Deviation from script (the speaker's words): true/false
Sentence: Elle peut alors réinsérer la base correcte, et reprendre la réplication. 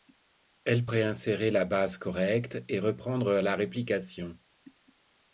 true